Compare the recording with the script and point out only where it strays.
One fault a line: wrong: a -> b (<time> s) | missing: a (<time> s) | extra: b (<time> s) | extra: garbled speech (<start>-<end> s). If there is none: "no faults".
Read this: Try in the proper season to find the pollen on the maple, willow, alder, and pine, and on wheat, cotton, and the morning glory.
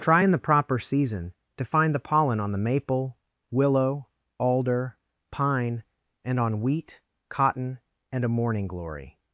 missing: and (5.0 s)
wrong: the -> a (8.2 s)